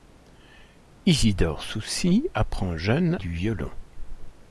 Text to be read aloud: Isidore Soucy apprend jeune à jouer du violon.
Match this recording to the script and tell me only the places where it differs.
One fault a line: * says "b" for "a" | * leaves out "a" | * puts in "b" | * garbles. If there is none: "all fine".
* leaves out "à jouer"